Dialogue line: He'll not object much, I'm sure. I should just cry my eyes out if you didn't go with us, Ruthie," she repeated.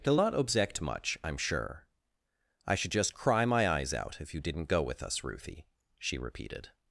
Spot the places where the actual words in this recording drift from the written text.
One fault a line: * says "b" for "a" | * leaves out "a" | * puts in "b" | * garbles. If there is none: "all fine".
all fine